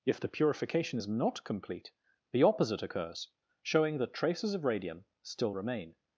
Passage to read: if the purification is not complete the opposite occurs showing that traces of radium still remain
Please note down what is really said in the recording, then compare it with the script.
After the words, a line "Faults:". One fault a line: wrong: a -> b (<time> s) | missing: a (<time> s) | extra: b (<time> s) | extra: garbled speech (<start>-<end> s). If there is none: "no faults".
if the purification is not complete the opposite occurs showing that traces of radium still remain
Faults:
no faults